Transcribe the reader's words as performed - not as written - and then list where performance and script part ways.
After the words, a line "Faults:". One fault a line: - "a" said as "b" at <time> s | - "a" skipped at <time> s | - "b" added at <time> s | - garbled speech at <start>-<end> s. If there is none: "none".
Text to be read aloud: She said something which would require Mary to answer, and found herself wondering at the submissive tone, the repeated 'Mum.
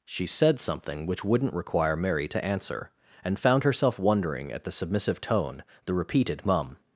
She said something which wouldn't require Mary to answer, and found herself wondering at the submissive tone, the repeated 'Mum.
Faults:
- "would" said as "wouldn't" at 1.2 s